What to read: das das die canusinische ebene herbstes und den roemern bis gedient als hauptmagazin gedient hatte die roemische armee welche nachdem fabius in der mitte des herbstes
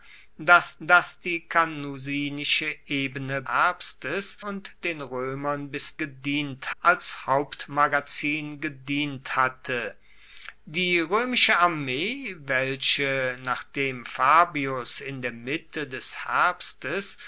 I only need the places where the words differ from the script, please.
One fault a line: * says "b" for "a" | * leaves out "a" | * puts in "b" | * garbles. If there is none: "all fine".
all fine